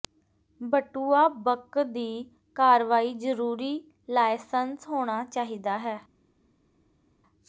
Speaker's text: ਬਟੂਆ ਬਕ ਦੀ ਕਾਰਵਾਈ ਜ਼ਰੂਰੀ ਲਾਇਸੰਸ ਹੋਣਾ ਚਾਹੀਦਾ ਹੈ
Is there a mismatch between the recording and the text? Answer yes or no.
no